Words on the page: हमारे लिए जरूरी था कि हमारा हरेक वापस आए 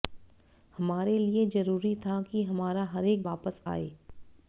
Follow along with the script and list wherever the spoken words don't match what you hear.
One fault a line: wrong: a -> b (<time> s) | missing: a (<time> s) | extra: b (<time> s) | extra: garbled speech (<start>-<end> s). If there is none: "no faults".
no faults